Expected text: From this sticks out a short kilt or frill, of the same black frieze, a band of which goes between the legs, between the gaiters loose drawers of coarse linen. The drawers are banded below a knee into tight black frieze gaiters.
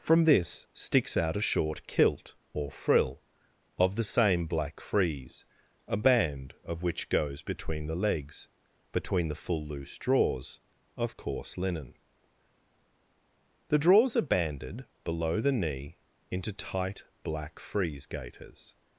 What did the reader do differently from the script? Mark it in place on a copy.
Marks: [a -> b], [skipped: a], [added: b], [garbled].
From this sticks out a short kilt or frill, of the same black frieze, a band of which goes between the legs, between the [gaiters -> full] loose drawers of coarse linen. The drawers are banded below [a -> the] knee into tight black frieze gaiters.